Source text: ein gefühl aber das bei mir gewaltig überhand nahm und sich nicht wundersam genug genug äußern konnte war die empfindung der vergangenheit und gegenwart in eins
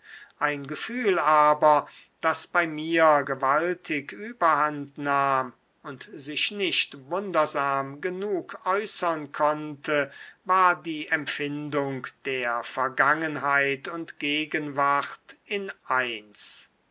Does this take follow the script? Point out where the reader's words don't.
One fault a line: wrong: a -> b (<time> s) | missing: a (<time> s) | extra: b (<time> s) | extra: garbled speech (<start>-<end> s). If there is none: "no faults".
missing: genug (8.6 s)